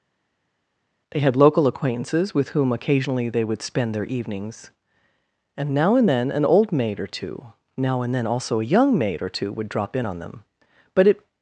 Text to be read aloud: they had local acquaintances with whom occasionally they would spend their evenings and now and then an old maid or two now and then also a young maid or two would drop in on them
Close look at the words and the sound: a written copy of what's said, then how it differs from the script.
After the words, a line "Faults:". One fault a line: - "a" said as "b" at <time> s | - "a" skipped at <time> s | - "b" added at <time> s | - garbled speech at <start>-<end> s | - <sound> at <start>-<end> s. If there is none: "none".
they had local acquaintances with whom occasionally they would spend their evenings and now and then an old maid or two now and then also a young maid or two would drop in on them but it
Faults:
- "but it" added at 10.9 s